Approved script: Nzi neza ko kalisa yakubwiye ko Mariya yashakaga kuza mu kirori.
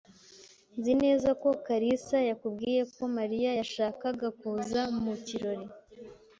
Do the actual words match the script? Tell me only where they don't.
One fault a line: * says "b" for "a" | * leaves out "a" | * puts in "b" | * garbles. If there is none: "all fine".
all fine